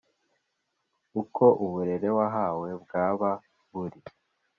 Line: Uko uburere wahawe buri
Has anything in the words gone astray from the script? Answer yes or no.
yes